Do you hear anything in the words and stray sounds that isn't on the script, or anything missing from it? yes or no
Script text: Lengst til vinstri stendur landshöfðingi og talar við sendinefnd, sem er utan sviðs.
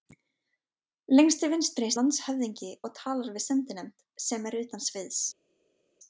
yes